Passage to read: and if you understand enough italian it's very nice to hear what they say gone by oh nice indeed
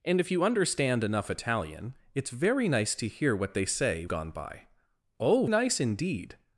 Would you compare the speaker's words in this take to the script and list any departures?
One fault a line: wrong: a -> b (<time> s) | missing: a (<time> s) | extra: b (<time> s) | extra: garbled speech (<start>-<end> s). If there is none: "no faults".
no faults